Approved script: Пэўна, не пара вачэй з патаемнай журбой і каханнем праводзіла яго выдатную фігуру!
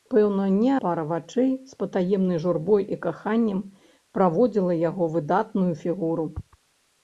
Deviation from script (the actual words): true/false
false